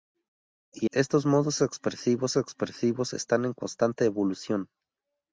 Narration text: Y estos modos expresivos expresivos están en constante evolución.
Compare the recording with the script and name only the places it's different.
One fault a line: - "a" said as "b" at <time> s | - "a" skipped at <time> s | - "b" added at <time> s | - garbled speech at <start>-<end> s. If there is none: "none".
none